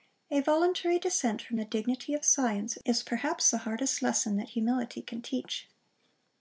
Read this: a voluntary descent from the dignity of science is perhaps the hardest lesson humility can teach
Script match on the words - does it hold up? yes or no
no